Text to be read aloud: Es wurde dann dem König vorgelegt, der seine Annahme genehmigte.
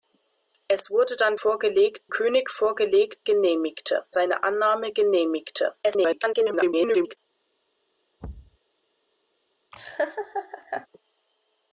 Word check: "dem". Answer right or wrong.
wrong